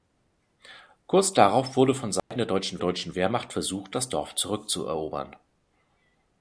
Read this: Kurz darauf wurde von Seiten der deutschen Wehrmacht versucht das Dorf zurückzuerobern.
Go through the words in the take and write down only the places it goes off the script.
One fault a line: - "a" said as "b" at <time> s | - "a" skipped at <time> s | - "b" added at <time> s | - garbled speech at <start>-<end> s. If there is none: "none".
- "deutschen" added at 2.8 s